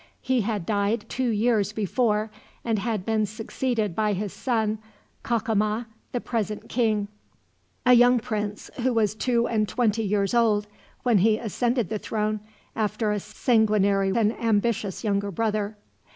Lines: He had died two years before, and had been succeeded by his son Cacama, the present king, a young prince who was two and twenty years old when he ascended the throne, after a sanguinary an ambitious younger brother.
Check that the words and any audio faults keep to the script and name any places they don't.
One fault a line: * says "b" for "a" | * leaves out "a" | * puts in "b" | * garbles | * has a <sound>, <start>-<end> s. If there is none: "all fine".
all fine